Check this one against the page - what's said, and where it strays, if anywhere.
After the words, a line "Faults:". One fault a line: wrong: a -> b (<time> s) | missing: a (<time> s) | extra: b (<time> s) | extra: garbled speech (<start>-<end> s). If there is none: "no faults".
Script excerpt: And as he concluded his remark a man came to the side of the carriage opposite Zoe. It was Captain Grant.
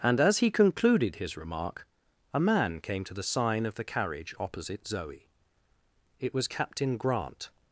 And as he concluded his remark a man came to the sign of the carriage opposite Zoe. It was Captain Grant.
Faults:
wrong: side -> sign (3.2 s)